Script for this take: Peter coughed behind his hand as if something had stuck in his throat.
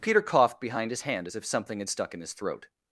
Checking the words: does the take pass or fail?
pass